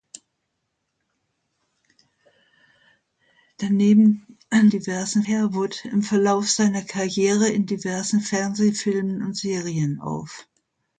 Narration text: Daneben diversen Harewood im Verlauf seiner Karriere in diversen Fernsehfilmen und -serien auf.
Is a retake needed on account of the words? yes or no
no